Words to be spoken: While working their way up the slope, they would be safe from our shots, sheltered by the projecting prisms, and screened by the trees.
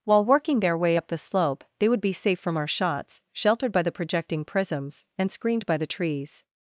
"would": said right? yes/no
yes